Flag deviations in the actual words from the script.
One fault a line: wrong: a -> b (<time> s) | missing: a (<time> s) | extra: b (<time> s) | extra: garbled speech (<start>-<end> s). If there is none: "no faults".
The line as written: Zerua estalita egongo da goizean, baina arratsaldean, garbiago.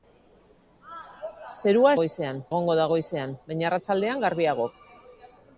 wrong: estalita -> goizean (2.0 s)